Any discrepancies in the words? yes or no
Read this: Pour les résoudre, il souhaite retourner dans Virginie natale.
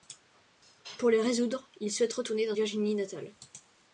no